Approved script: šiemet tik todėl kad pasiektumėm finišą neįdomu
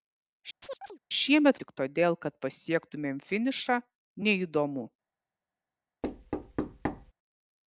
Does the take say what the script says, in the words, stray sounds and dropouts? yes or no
no